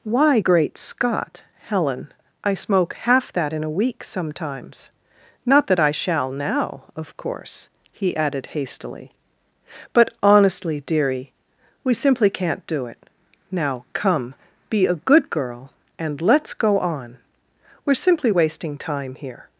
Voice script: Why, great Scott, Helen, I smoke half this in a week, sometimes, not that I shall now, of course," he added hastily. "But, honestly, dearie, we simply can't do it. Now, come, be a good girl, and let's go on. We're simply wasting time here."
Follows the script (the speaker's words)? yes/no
no